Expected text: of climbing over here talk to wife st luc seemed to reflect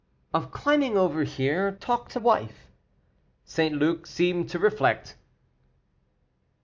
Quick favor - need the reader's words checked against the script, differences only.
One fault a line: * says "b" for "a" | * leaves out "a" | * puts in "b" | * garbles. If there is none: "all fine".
all fine